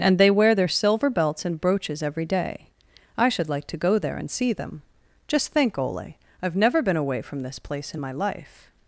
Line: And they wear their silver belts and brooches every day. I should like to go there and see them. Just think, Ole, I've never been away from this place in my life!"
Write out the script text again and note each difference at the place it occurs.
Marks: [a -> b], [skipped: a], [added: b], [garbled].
And they wear their silver belts and brooches every day. I should like to go there and see them. Just think, Ole, I've never been away from this place in my life!"